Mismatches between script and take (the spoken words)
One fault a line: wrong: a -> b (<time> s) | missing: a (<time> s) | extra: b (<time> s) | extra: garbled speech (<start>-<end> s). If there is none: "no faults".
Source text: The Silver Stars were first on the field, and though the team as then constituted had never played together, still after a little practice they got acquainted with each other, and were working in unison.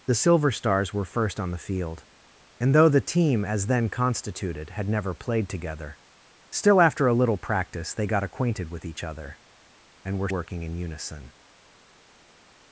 no faults